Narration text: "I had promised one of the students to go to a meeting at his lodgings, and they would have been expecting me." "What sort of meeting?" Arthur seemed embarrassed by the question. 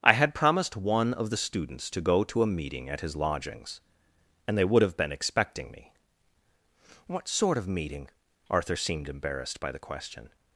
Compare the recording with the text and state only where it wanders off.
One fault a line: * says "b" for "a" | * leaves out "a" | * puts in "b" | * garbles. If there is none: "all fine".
all fine